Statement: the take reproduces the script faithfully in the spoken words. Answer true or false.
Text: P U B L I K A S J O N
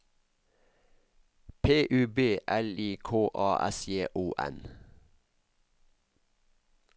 true